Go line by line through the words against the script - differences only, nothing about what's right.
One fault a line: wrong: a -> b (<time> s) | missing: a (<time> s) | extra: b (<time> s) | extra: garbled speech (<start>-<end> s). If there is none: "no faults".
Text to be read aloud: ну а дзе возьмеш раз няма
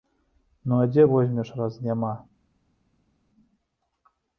no faults